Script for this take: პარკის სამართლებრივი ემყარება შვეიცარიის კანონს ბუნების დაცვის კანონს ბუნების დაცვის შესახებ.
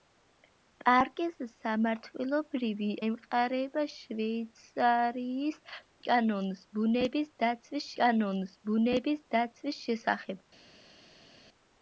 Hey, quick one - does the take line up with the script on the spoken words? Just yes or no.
yes